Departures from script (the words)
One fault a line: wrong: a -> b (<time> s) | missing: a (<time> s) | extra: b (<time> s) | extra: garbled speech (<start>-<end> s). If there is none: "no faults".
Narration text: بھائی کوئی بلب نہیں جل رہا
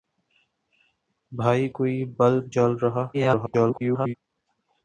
missing: نہیں (2.4 s)
extra: garbled speech (3.1-4.1 s)